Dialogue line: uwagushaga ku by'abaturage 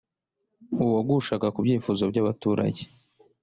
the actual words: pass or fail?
fail